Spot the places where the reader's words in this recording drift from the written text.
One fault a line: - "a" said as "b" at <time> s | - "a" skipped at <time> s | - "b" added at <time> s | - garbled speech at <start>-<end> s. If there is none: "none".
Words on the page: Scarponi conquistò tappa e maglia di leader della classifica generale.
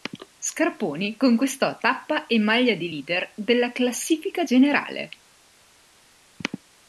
none